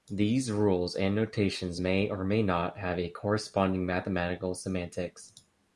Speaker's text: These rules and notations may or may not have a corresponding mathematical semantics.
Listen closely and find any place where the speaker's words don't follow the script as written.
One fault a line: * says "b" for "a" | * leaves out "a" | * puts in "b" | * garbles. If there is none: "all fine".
all fine